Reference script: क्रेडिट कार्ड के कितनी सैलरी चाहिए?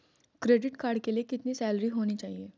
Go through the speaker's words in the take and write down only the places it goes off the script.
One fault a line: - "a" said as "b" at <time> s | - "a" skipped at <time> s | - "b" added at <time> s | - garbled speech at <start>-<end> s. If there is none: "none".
- "लिए" added at 1.1 s
- "होनी" added at 1.9 s